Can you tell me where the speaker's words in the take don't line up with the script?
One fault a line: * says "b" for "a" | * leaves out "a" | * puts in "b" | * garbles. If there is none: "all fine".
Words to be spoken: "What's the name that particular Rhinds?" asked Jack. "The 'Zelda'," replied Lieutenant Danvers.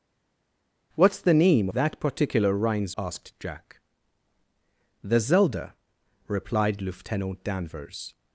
all fine